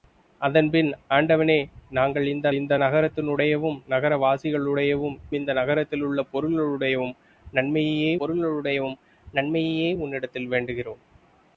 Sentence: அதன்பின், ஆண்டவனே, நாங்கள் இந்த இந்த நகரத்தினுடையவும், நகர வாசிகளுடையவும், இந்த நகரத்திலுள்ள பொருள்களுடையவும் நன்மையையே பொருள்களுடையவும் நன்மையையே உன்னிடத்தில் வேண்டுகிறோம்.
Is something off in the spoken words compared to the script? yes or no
no